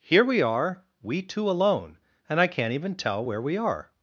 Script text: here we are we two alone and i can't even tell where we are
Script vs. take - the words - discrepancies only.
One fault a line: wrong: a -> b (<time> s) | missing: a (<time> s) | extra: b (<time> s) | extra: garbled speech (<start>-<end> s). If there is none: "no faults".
no faults